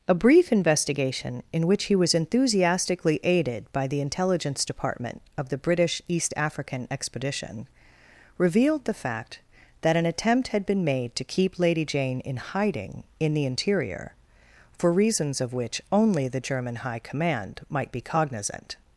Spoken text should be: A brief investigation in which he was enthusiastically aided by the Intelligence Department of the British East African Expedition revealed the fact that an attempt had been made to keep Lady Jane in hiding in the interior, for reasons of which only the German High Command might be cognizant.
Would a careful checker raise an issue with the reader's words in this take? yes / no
no